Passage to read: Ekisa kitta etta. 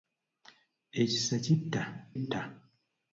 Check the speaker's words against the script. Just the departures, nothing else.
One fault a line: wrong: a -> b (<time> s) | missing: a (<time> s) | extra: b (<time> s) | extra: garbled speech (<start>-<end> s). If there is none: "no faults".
no faults